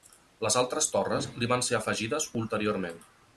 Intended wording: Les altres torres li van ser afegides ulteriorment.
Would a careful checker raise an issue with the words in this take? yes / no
no